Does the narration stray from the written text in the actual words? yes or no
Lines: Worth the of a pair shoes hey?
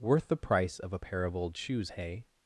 yes